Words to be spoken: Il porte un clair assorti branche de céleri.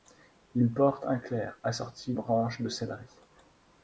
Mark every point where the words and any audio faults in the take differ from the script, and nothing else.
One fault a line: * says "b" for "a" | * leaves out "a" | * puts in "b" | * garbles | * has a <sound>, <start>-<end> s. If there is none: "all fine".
all fine